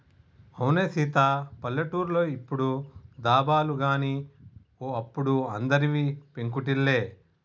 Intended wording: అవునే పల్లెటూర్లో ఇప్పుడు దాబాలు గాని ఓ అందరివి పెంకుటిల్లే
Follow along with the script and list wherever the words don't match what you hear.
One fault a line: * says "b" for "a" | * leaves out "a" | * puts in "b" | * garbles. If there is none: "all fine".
* puts in "సీత"
* puts in "అప్పుడు"